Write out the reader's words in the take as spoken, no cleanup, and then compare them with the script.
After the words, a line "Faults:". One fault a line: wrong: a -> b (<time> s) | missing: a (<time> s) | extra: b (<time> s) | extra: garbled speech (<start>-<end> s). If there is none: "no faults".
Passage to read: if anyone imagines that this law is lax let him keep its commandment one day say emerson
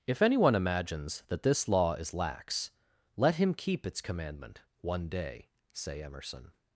if anyone imagines that this law is lax let him keep its commandment one day say emerson
Faults:
no faults